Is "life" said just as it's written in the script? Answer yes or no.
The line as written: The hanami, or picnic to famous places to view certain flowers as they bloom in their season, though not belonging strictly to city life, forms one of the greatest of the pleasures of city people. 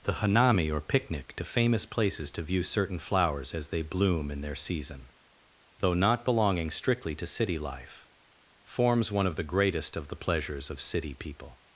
yes